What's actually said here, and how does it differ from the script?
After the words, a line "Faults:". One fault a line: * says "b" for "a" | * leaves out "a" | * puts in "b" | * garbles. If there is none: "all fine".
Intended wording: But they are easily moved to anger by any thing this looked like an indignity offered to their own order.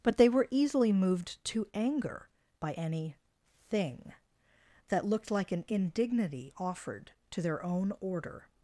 But they were easily moved to anger by any thing that looked like an indignity offered to their own order.
Faults:
* says "were" for "are"
* says "that" for "this"